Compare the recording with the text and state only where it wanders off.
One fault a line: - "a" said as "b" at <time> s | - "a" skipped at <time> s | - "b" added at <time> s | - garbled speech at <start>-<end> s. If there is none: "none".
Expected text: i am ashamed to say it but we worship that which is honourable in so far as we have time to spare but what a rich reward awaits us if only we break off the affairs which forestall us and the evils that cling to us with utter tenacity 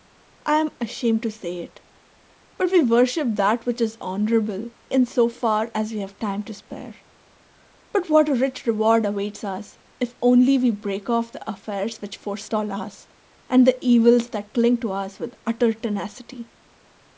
none